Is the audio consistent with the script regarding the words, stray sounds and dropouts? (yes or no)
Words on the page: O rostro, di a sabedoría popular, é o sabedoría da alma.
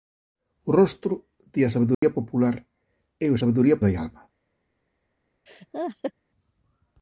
no